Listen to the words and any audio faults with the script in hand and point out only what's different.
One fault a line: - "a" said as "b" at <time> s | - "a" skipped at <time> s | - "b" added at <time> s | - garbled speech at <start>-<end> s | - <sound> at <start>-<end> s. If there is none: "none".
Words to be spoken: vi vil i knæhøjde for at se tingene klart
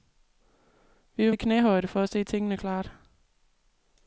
none